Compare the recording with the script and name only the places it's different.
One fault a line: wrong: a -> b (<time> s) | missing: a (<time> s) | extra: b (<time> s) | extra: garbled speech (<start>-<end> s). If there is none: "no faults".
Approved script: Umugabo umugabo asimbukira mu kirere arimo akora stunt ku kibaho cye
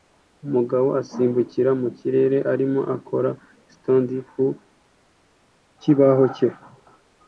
missing: umugabo (0.9 s)